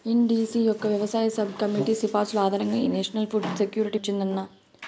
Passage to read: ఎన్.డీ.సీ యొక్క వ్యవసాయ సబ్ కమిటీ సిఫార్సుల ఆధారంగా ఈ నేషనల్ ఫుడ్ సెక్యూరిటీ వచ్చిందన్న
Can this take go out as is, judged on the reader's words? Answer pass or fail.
pass